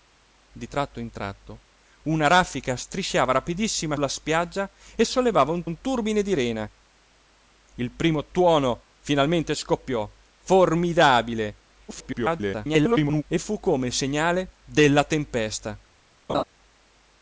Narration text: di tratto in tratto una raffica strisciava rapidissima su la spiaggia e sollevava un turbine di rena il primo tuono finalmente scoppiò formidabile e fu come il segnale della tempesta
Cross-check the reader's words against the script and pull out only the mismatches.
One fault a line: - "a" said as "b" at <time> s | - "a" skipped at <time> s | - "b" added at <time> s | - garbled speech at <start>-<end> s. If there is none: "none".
- "su" skipped at 4.0 s
- "un" added at 5.6 s
- garbled speech at 11.9-13.2 s